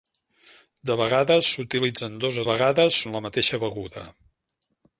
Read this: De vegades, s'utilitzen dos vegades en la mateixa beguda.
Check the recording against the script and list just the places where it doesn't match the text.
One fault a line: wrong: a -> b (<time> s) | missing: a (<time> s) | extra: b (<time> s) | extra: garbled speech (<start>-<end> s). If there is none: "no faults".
no faults